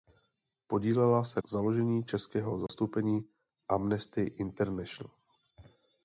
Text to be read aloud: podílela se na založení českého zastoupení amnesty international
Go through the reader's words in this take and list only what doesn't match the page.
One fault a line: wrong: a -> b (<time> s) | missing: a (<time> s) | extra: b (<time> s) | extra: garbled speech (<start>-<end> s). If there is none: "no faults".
missing: na (1.4 s)